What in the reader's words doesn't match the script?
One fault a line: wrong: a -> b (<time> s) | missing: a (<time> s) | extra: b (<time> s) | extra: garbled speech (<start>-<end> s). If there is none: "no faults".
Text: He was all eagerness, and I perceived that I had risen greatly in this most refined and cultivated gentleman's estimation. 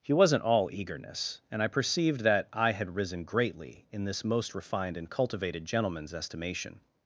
wrong: was -> wasn't (0.1 s)